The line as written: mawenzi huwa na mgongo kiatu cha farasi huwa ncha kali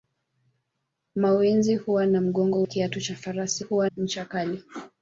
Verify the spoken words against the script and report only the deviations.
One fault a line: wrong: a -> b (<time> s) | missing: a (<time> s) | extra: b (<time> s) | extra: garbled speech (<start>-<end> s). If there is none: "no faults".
no faults